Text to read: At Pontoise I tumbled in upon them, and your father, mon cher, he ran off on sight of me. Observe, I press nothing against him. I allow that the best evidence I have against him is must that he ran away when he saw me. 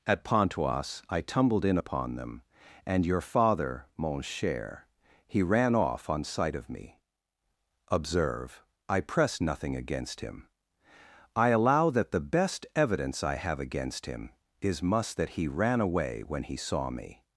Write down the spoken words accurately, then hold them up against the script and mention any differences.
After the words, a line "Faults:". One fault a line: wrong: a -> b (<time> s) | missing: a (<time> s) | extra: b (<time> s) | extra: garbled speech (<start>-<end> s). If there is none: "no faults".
At Pontoise I tumbled in upon them, and your father, mon cher, he ran off on sight of me. Observe, I press nothing against him. I allow that the best evidence I have against him is must that he ran away when he saw me.
Faults:
no faults